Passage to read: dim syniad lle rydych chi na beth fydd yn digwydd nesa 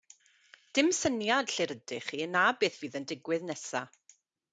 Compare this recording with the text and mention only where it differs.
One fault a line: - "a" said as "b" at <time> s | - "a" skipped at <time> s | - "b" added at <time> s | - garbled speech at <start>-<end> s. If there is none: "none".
none